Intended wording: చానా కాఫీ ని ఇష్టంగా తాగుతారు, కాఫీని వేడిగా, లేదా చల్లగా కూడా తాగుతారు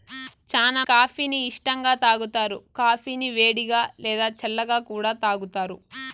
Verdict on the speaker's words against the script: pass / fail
pass